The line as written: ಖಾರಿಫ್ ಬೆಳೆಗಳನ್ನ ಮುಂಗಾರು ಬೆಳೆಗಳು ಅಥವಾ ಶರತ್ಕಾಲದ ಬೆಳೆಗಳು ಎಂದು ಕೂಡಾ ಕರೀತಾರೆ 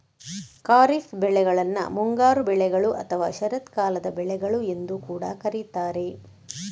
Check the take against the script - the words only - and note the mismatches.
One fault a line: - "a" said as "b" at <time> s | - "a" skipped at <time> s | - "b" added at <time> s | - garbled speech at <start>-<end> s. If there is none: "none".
none